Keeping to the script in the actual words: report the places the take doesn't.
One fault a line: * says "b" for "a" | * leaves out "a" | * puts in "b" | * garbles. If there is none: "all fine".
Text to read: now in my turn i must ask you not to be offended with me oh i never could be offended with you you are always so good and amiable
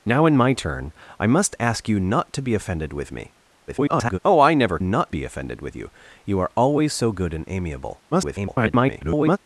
* garbles
* says "not" for "could"
* garbles